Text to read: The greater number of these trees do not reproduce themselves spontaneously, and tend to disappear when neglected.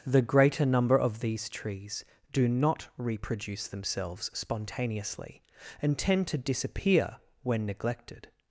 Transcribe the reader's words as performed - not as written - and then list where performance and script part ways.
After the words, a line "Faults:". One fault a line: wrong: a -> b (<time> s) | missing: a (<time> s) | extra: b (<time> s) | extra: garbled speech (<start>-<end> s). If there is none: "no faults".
The greater number of these trees do not reproduce themselves spontaneously, and tend to disappear when neglected.
Faults:
no faults